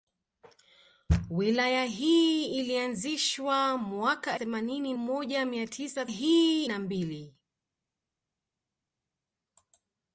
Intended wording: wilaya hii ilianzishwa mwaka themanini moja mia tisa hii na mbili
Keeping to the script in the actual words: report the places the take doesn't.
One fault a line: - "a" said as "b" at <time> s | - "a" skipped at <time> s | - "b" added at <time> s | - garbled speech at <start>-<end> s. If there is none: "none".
none